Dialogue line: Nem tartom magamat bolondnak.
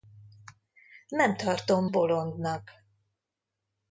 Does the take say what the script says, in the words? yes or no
no